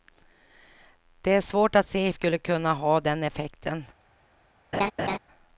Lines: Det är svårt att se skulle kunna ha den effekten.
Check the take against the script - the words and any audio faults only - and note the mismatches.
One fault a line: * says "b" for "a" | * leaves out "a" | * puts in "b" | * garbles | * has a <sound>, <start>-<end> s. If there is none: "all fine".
* has a laugh, 4.7-5.2 s